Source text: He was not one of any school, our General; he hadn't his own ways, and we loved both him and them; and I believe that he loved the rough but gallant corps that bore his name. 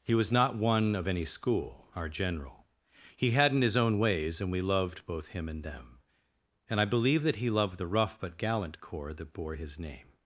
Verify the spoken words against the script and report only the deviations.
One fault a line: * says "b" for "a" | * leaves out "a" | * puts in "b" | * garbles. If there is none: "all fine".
all fine